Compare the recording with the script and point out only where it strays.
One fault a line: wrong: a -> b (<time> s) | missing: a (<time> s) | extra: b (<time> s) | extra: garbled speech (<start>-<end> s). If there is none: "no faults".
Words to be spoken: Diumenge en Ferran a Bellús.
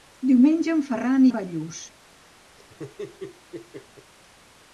no faults